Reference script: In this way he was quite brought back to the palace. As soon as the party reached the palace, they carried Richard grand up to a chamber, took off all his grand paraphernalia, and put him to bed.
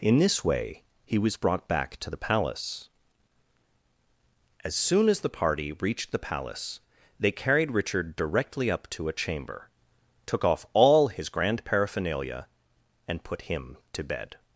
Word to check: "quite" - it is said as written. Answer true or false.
false